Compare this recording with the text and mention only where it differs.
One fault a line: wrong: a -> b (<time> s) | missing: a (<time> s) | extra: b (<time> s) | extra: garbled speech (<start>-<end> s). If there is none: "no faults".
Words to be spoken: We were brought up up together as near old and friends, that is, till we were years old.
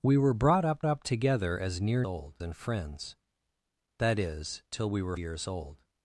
no faults